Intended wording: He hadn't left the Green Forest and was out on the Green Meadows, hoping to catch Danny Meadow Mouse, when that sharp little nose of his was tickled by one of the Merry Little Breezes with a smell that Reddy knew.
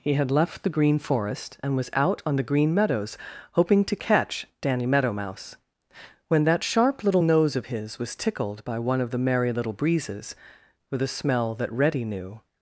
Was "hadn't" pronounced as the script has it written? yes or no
no